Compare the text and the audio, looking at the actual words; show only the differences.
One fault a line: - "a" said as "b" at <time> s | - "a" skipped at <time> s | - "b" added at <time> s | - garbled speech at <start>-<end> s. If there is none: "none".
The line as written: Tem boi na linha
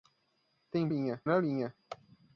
- "boi" said as "linha" at 0.8 s